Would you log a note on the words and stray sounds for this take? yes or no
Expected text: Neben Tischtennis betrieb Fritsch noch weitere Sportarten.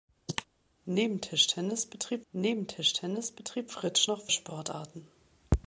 yes